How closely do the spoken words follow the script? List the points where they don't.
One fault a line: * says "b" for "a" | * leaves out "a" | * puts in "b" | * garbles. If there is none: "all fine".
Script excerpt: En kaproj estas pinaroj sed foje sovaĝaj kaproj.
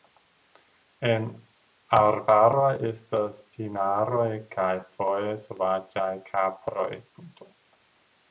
* says "arbaroj" for "kaproj"
* says "kaj" for "sed"